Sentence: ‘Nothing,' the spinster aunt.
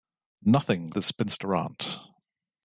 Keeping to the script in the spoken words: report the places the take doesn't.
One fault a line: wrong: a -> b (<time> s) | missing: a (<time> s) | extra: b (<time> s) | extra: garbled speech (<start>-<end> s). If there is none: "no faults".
no faults